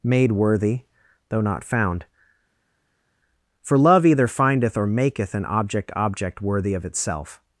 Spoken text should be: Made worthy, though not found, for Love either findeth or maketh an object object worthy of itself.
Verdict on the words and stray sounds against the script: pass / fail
pass